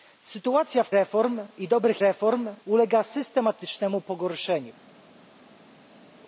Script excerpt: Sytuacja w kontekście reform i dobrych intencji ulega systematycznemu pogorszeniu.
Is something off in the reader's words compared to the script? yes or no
yes